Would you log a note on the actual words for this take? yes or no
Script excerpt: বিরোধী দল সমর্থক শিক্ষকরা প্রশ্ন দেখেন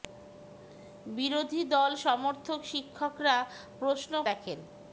no